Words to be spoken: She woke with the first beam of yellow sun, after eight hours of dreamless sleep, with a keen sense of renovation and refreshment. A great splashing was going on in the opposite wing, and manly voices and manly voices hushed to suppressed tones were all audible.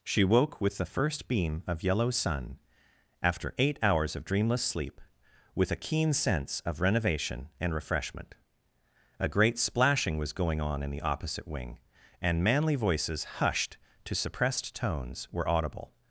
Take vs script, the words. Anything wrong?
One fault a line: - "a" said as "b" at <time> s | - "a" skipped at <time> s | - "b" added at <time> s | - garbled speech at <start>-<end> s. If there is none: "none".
- "and manly voices" skipped at 13.2 s
- "all" skipped at 15.5 s